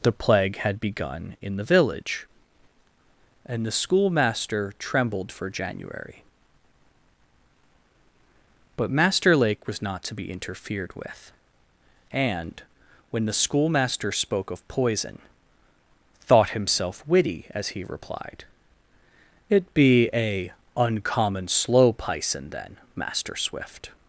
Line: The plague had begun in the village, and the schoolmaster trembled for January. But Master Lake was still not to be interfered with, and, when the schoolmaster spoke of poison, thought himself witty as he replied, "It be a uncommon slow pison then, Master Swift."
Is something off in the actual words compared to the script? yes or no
yes